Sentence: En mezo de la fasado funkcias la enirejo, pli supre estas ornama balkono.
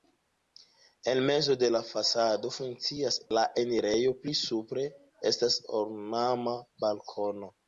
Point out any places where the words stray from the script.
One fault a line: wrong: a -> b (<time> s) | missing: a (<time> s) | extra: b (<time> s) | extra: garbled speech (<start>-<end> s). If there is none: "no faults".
no faults